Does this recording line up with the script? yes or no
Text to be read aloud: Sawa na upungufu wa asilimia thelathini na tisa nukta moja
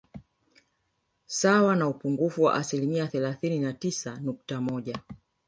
yes